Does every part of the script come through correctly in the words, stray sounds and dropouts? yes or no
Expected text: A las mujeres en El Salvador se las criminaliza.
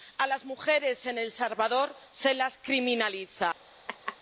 no